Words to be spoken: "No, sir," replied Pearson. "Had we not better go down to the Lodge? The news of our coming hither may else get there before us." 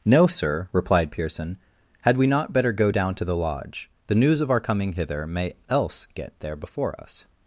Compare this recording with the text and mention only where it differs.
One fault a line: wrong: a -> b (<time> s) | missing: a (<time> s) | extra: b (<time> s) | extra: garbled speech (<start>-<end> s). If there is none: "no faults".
no faults